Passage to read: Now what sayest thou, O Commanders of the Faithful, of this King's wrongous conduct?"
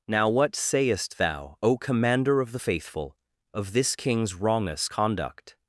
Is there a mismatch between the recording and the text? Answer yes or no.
yes